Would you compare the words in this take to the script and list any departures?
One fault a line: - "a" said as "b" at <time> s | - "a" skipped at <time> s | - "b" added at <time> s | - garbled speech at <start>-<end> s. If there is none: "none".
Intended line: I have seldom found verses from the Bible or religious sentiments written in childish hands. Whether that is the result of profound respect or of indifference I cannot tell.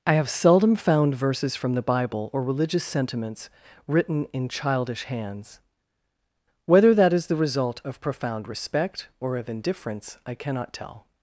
none